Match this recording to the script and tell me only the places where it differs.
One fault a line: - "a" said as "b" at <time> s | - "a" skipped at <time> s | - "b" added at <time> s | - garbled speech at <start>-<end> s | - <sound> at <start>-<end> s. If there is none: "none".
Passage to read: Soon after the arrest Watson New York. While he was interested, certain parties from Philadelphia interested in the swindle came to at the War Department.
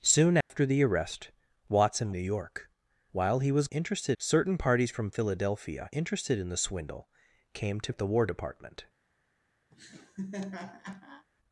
- dropout at 0.4-0.5 s
- laugh at 9.7-11.3 s